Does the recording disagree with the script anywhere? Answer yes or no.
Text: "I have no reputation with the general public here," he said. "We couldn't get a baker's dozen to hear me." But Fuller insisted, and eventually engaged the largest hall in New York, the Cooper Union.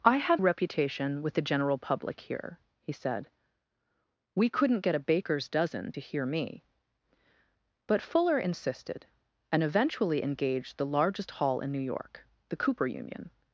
yes